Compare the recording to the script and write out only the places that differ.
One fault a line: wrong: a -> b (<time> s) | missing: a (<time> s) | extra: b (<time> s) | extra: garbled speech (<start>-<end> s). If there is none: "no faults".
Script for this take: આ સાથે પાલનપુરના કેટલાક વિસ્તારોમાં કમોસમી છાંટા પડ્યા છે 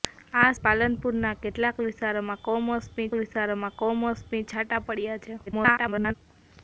missing: સાથે (0.5 s)
extra: વિસ્તારોમાં કમોસમી (3.1 s)
extra: garbled speech (5.5-6.1 s)